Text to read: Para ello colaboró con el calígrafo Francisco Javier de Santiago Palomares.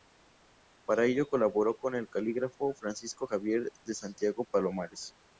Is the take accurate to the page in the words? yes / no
yes